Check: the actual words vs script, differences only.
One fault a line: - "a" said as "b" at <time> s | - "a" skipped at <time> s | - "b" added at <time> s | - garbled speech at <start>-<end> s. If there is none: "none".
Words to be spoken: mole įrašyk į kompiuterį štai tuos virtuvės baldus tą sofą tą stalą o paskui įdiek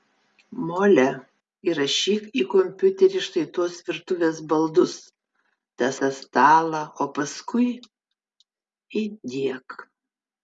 - "sofą" skipped at 5.9 s